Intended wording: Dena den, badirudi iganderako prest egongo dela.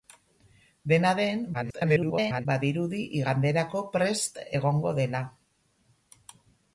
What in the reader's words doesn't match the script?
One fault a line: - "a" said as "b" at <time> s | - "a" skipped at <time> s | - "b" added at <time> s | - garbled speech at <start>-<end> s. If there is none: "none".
- garbled speech at 1.5-2.5 s